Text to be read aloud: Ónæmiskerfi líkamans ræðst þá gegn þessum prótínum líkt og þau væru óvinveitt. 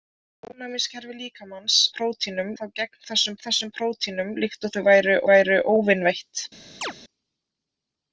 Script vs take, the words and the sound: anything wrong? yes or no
yes